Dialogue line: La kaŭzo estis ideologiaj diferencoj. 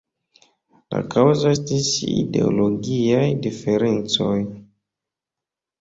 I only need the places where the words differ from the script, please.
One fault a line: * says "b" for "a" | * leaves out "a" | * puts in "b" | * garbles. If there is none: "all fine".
all fine